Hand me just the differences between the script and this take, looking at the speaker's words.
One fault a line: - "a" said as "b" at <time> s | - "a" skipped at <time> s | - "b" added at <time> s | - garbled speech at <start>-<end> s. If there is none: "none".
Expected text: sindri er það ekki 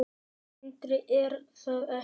none